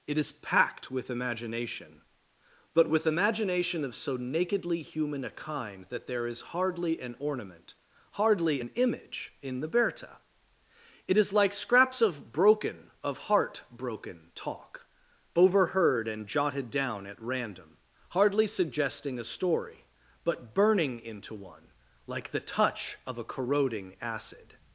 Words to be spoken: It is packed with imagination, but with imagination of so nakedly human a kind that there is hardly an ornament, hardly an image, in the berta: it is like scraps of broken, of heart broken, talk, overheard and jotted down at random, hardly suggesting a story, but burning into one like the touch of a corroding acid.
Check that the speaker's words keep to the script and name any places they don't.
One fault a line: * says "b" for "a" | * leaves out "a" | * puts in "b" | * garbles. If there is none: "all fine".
all fine